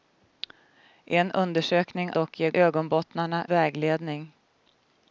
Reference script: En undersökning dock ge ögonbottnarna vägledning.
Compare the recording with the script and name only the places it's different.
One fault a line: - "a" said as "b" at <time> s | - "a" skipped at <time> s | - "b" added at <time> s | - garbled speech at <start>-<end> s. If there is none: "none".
none